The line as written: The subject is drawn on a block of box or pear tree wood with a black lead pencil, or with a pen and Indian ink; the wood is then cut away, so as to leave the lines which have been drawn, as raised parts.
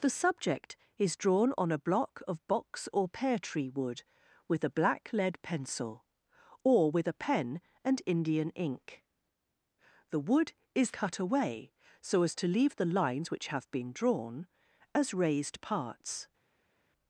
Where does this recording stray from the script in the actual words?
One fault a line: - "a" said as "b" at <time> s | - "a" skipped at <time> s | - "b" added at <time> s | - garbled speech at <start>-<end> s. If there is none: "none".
- "then" skipped at 10.9 s